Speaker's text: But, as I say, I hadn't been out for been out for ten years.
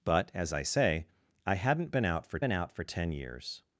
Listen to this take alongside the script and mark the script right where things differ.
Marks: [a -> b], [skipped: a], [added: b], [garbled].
But, as I say, I hadn't been out for been out for ten years.